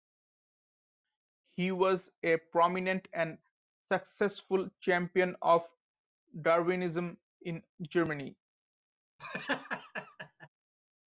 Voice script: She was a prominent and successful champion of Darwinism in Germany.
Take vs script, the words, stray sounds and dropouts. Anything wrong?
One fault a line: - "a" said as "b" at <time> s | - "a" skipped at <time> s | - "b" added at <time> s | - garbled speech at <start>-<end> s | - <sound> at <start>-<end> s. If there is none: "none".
- "She" said as "He" at 1.4 s
- laugh at 9.2-10.5 s